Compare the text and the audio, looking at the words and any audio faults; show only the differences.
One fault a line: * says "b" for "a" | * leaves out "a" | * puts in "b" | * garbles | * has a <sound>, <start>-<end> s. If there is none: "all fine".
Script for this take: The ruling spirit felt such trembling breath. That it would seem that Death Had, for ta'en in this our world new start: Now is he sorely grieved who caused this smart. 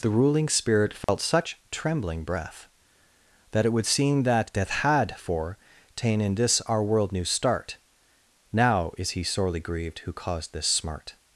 * has a dropout, 1.0-1.1 s